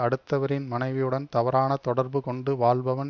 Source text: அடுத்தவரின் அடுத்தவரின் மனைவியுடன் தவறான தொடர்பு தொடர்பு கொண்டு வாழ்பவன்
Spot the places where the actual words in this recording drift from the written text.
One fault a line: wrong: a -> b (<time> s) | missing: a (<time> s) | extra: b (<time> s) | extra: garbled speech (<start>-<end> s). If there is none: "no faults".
missing: அடுத்தவரின் (0.7 s)
missing: தொடர்பு (2.2 s)